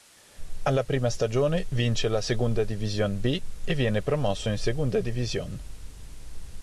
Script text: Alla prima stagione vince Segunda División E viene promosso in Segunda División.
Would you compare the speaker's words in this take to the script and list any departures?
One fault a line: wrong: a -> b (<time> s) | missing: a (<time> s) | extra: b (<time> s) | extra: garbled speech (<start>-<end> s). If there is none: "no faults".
extra: la (2.1 s)
extra: B (3.2 s)